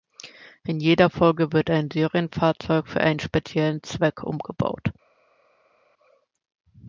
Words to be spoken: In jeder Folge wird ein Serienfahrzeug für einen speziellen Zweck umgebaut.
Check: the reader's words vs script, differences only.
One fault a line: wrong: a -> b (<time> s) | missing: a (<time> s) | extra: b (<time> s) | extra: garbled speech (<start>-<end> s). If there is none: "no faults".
no faults